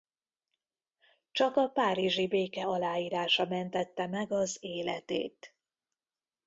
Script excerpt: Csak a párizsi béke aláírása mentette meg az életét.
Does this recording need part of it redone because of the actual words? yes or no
no